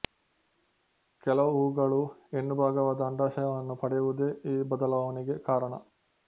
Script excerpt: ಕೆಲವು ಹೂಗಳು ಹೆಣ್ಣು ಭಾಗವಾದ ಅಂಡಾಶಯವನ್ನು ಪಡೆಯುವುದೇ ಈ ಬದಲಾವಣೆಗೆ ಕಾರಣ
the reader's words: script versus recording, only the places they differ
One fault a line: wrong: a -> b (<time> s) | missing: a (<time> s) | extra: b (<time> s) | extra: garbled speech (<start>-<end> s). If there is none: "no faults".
no faults